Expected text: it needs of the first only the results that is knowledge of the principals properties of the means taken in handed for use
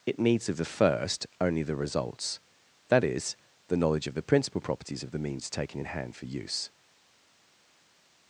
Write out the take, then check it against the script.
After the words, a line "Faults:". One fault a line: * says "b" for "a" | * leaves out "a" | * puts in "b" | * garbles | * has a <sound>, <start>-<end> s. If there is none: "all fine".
it needs of the first only the results that is the knowledge of the principal properties of the means taken in hand for use
Faults:
* puts in "the"
* says "principal" for "principals"
* says "hand" for "handed"